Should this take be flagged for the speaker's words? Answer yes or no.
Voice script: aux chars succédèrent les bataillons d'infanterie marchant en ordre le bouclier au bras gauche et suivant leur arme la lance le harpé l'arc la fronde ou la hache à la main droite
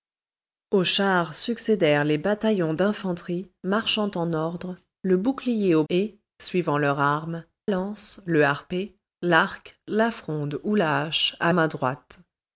yes